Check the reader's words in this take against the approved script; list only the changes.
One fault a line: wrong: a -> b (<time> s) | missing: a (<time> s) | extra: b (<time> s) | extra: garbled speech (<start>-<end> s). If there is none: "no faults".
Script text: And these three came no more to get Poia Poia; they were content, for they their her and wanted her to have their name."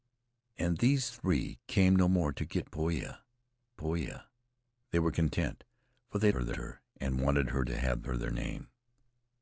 no faults